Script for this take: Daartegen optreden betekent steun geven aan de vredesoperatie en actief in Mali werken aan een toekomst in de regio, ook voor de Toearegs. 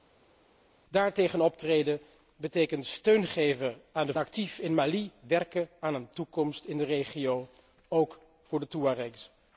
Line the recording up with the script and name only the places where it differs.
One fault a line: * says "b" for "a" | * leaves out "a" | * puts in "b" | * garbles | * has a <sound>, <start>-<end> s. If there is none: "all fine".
* leaves out "vredesoperatie en"